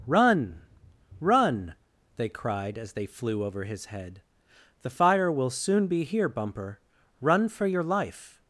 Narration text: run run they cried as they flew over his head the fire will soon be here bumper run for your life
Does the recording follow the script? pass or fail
pass